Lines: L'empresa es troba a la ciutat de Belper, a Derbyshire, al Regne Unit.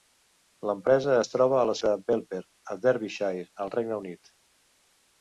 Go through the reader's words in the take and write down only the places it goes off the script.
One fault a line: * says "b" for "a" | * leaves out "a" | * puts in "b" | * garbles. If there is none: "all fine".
* leaves out "ciutat"